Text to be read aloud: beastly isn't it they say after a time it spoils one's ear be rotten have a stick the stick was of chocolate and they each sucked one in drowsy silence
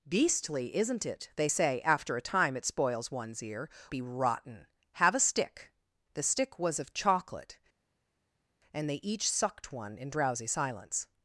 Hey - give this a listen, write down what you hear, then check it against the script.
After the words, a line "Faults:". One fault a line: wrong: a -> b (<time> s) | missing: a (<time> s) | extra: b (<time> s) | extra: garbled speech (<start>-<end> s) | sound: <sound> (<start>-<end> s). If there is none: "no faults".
beastly isn't it they say after a time it spoils one's ear be rotten have a stick the stick was of chocolate and they each sucked one in drowsy silence
Faults:
no faults